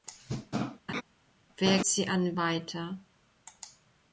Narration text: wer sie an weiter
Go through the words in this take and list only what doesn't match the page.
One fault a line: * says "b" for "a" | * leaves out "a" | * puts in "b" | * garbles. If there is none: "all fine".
all fine